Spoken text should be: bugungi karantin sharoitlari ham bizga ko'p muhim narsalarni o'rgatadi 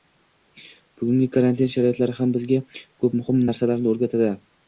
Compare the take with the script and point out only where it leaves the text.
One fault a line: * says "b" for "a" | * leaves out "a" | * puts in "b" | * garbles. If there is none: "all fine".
all fine